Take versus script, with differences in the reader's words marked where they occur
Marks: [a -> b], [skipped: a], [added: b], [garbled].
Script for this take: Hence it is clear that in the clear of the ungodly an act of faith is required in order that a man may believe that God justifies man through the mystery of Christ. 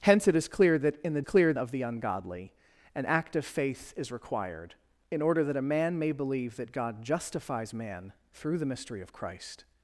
Hence it is clear that in the clear of the ungodly an act of faith is required in order that a man may believe that God justifies man through the mystery of Christ.